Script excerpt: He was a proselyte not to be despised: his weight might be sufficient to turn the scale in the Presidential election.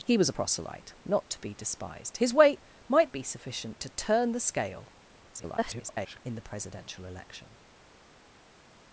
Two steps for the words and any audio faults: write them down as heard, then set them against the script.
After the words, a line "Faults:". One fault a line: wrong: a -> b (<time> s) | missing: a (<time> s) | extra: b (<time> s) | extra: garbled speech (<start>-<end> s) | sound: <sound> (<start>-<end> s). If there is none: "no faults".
He was a proselyte not to be despised: his weight might be sufficient to turn the scale [garbled] in the Presidential election.
Faults:
extra: garbled speech (5.3-6.2 s)